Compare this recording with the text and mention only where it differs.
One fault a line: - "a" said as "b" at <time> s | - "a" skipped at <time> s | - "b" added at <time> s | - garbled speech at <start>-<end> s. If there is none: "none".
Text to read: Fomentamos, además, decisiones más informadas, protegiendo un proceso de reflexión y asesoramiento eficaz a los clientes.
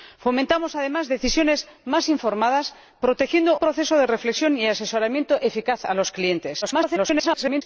- "un" skipped at 3.6 s
- garbled speech at 6.6-7.6 s